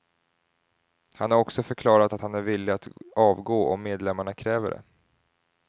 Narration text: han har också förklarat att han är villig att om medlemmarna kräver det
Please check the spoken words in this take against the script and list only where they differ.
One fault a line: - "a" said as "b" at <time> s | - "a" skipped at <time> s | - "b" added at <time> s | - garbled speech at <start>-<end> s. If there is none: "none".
- "avgå" added at 3.2 s